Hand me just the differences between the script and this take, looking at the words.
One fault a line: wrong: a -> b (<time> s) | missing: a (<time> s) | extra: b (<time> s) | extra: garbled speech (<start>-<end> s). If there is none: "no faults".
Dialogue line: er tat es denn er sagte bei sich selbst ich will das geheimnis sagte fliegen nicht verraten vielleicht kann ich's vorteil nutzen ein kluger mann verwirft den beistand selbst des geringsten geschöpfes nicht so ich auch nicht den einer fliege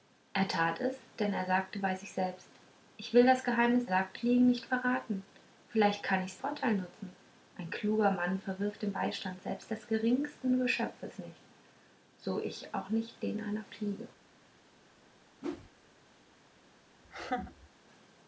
no faults